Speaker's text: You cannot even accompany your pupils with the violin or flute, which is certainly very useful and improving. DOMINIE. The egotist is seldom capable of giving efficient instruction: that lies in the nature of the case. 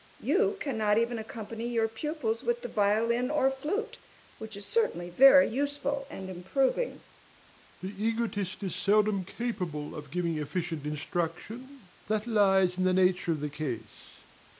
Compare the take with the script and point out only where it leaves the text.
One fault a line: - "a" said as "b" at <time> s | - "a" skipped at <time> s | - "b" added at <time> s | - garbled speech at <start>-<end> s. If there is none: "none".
none